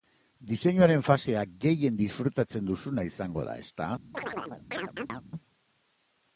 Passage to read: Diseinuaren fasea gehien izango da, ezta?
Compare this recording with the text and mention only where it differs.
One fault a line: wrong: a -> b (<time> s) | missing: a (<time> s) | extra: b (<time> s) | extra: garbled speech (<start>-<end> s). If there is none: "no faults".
extra: disfrutatzen duzuna (2.0 s)